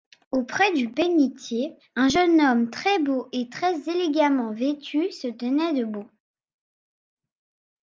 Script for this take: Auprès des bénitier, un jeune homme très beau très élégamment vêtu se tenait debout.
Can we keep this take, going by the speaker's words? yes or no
no